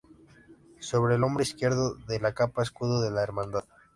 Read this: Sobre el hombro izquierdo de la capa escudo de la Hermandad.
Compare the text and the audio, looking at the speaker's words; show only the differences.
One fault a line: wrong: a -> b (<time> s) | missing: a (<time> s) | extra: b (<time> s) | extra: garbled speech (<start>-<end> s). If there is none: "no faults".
no faults